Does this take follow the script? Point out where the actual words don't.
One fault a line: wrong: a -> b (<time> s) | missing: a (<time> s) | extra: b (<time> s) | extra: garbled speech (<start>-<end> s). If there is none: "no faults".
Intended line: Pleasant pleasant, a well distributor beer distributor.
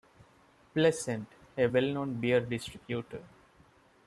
missing: pleasant (1.3 s)
wrong: distributor -> known (1.9 s)